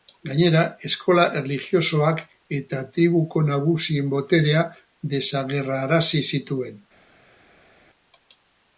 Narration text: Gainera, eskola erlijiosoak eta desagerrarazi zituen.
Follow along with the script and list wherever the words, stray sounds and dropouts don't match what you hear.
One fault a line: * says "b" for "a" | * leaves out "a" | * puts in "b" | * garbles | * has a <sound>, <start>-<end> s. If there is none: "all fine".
* puts in "tribuko nagusien boterea"